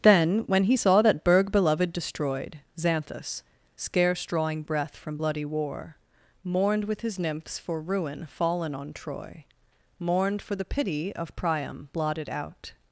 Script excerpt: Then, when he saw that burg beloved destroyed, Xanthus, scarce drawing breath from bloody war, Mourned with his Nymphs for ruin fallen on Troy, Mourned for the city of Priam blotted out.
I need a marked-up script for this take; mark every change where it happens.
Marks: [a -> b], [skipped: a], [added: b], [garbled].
Then, when he saw that burg beloved destroyed, Xanthus, scarce drawing breath from bloody war, Mourned with his Nymphs for ruin fallen on Troy, Mourned for the [city -> pity] of Priam blotted out.